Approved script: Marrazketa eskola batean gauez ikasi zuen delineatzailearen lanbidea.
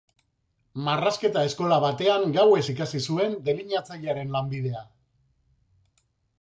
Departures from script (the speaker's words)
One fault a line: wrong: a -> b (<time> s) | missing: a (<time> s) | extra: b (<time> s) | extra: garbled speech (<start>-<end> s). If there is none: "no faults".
no faults